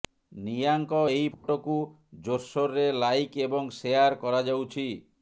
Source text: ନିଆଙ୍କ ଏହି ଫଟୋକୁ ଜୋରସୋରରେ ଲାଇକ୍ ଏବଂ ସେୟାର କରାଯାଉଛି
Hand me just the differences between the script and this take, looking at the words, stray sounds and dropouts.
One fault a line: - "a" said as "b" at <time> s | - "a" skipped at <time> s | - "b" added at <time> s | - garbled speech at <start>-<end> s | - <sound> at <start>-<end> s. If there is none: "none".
- dropout at 1.3-1.4 s